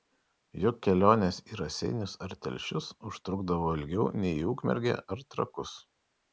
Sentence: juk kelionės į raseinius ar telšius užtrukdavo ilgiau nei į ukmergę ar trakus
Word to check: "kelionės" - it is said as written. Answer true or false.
true